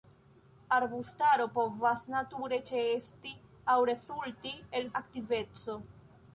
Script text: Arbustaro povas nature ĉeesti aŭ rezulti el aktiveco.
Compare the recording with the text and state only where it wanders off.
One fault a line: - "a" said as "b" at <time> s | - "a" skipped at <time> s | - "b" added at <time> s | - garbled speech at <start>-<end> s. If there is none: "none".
none